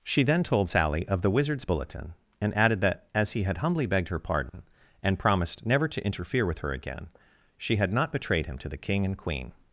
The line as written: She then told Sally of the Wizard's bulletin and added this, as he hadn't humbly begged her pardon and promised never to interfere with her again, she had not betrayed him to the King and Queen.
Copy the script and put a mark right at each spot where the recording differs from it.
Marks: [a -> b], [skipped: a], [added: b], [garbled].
She then told Sally of the Wizard's bulletin and added [this, -> that] as he [hadn't -> had] humbly begged her pardon and promised never to interfere with her again, she had not betrayed him to the King and Queen.